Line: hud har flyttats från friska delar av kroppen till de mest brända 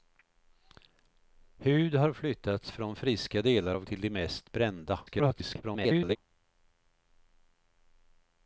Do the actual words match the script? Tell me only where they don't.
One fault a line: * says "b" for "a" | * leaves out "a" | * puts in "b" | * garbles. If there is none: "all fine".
* leaves out "kroppen"
* garbles